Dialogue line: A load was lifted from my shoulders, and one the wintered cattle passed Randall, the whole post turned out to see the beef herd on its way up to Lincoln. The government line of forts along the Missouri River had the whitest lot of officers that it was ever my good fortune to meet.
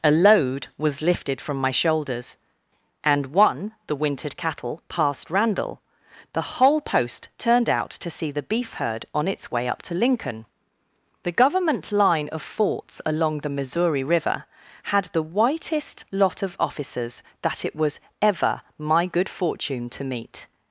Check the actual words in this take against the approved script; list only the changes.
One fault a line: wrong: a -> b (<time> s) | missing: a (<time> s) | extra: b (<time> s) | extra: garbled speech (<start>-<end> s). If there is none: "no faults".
no faults